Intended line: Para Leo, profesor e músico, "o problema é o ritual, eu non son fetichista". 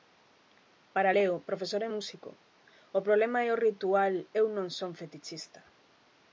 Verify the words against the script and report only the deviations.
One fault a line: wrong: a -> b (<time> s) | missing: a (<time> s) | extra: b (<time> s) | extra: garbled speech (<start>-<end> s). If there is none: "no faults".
no faults